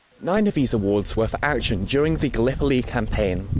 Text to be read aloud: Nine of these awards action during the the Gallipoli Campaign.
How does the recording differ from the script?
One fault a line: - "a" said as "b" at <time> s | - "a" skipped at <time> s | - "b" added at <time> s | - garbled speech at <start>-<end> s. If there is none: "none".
- "were for" added at 1.2 s
- "the" skipped at 2.3 s